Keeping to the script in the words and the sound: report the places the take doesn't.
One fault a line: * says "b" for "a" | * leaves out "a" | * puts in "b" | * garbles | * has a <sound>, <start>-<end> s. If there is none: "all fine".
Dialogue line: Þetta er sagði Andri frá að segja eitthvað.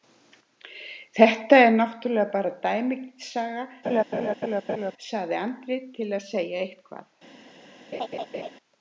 * puts in "náttúrlega bara dæmisaga"
* has a laugh, 3.8-4.9 s
* says "til" for "frá"
* has a laugh, 7.9-8.5 s